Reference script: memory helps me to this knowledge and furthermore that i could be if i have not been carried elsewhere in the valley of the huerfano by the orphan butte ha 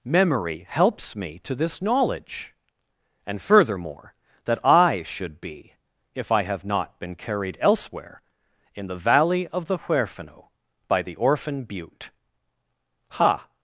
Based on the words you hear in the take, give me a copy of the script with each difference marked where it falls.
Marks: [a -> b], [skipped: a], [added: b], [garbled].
memory helps me to this knowledge and furthermore that i [could -> should] be if i have not been carried elsewhere in the valley of the huerfano by the orphan butte ha